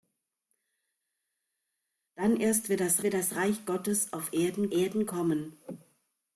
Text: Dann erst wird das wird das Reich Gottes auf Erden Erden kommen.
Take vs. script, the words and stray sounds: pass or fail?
pass